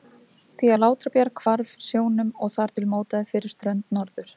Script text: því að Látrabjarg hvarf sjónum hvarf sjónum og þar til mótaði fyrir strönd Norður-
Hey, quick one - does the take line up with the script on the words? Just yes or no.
no